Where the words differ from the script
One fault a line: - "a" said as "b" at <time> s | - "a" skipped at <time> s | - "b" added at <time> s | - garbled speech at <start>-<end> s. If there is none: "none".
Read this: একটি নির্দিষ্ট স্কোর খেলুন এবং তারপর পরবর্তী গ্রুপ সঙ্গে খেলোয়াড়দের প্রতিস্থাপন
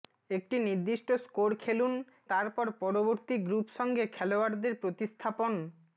- "এবং" skipped at 1.9 s